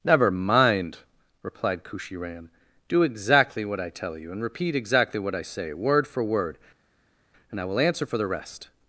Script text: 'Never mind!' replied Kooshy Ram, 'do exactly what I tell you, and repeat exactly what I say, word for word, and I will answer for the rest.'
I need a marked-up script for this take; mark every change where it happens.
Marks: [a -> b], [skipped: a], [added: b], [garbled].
'Never mind!' replied Kooshy Ram, 'do exactly what I tell you, and repeat exactly what I say, word for word, and I will answer for the rest.'